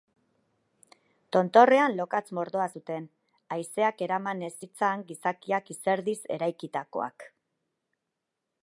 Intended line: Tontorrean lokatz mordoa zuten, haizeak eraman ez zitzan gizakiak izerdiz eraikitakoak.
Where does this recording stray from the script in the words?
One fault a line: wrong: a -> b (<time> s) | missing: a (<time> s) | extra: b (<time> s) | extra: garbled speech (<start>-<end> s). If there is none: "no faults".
no faults